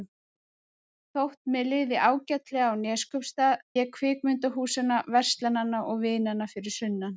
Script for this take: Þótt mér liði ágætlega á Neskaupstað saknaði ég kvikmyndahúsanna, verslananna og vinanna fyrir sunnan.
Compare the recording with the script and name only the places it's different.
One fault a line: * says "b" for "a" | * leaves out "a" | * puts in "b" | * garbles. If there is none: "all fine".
* leaves out "saknaði"